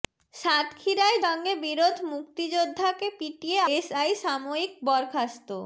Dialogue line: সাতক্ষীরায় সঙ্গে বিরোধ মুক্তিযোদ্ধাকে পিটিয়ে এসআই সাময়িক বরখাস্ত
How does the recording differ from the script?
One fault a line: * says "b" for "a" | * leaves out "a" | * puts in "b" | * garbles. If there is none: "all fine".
all fine